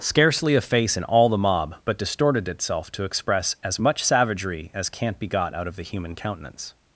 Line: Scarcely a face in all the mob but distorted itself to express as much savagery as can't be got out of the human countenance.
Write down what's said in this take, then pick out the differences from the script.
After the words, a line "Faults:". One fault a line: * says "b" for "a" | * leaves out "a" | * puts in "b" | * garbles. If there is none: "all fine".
Scarcely a face in all the mob but distorted itself to express as much savagery as can't be got out of the human countenance.
Faults:
all fine